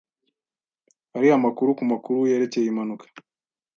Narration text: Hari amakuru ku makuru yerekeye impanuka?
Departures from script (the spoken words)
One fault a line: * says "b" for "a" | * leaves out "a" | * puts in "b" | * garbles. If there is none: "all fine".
all fine